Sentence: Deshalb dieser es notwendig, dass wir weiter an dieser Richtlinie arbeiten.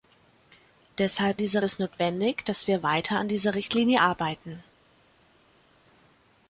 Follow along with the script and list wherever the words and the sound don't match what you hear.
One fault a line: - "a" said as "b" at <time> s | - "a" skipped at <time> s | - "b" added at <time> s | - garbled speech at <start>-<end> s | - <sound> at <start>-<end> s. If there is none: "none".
none